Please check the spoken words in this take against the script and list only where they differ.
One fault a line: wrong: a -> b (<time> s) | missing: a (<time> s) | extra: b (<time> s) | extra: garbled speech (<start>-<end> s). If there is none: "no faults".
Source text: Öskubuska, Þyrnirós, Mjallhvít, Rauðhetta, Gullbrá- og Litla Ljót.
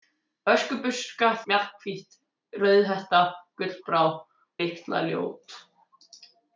missing: Þyrnirós (1.3 s)
missing: og (4.1 s)